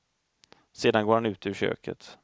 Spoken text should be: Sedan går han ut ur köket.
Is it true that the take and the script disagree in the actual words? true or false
false